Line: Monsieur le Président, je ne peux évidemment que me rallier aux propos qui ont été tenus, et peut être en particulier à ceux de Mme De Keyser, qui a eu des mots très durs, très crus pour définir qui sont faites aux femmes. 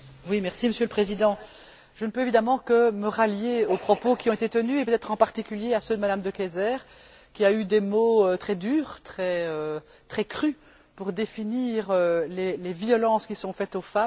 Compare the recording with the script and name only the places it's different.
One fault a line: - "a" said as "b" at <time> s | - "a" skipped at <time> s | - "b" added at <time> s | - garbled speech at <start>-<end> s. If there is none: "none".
- "les violences" added at 12.3 s